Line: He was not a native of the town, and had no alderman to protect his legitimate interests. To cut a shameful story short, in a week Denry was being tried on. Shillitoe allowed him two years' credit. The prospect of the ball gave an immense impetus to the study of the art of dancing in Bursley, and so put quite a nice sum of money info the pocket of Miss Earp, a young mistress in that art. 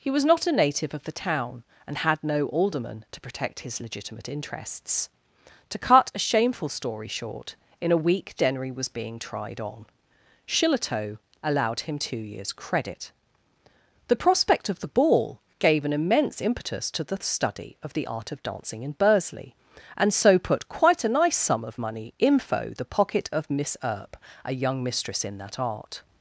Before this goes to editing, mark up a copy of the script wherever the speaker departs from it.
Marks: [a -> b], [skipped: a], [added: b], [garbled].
He was not a native of the town, and had no alderman to protect his legitimate interests. To cut a shameful story short, in a week Denry was being tried on. Shillitoe allowed him two years' credit. The prospect of the ball gave an immense impetus to the study of the art of dancing in Bursley, and so put quite a nice sum of money info the pocket of Miss Earp, a young mistress in that art.